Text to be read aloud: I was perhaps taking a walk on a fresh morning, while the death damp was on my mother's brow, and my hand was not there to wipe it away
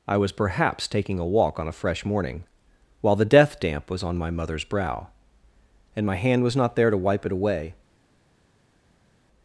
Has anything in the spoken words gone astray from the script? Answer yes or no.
no